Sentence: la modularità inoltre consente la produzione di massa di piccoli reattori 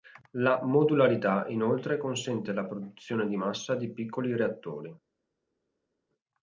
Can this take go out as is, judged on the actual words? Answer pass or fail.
pass